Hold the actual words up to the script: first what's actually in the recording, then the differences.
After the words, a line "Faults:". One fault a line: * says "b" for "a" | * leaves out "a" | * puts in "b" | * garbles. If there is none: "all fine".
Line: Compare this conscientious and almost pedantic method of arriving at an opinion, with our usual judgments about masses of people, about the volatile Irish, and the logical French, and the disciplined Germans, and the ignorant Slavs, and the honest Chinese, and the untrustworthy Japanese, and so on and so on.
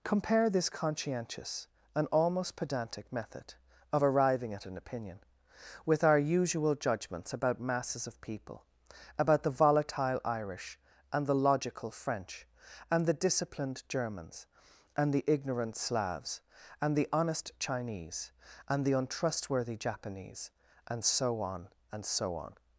Compare this conscientious and almost pedantic method of arriving at an opinion, with our usual judgments about masses of people, about the volatile Irish, and the logical French, and the disciplined Germans, and the ignorant Slavs, and the honest Chinese, and the untrustworthy Japanese, and so on and so on.
Faults:
all fine